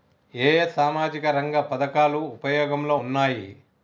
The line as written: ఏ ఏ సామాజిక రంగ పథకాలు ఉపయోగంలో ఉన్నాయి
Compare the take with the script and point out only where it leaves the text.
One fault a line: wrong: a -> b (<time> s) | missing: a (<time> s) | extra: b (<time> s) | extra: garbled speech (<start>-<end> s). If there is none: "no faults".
no faults